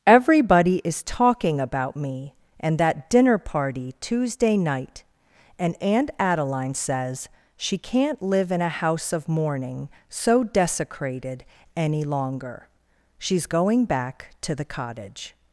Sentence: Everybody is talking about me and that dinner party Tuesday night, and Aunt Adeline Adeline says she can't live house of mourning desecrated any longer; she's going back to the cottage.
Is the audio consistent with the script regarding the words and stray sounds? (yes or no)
no